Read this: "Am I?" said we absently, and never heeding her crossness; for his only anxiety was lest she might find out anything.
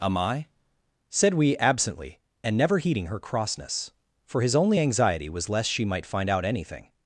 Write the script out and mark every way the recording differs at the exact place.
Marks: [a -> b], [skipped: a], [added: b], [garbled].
"Am I?" said we absently, and never heeding her crossness; for his only anxiety was lest she might find out anything.